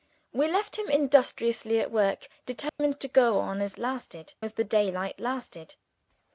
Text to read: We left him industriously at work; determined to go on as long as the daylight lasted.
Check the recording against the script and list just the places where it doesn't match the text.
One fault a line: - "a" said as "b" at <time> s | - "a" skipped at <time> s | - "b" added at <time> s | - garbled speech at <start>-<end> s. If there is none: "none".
- "long" said as "lasted" at 3.8 s